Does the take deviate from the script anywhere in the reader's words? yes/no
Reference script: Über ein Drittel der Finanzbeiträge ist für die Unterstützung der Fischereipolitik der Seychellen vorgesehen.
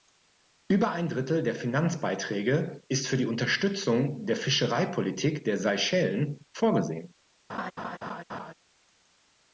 no